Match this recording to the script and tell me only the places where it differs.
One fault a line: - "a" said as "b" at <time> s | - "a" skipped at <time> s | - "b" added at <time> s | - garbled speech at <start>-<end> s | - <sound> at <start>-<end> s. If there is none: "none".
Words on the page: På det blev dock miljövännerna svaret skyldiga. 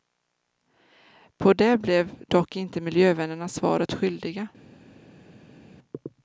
- "inte" added at 2.5 s